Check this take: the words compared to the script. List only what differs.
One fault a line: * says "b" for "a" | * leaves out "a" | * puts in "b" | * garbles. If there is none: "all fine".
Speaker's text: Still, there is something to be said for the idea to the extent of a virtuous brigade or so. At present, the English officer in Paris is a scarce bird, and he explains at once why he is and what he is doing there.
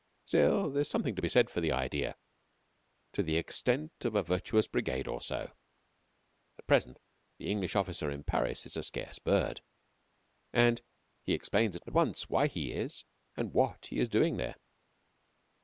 all fine